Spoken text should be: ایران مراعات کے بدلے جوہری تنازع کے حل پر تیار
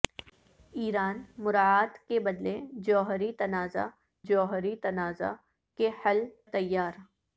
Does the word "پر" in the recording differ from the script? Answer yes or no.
yes